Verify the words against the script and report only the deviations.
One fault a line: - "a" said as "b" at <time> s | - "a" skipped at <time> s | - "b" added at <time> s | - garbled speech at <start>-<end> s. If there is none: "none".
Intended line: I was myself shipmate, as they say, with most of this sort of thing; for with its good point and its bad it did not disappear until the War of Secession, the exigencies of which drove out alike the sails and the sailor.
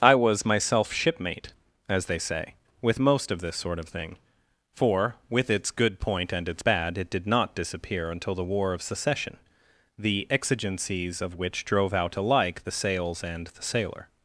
none